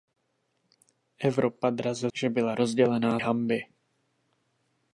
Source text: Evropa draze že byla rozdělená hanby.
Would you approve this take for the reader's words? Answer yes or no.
yes